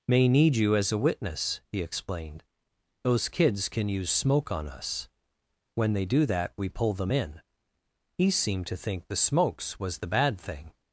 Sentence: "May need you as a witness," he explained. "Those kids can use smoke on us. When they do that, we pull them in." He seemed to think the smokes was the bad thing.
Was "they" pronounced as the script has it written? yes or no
yes